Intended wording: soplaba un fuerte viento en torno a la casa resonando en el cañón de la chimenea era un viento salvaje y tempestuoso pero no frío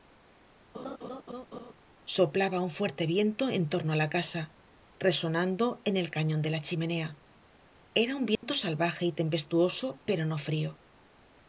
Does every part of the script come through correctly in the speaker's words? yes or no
yes